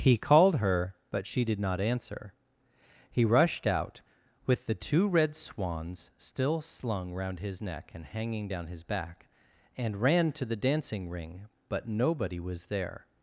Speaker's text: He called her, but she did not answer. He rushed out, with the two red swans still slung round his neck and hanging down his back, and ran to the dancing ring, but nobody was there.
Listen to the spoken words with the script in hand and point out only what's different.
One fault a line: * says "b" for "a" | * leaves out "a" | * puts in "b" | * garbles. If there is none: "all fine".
all fine